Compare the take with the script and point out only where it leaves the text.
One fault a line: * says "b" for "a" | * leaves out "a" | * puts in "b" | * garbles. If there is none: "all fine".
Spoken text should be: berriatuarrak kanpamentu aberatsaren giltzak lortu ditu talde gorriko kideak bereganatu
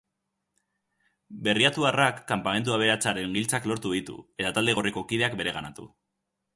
* puts in "eta"